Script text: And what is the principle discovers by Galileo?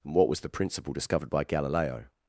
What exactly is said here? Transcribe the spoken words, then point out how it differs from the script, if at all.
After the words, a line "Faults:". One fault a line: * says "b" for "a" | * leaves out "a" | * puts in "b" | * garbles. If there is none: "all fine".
And what was the principle discovered by Galileo?
Faults:
* says "was" for "is"
* says "discovered" for "discovers"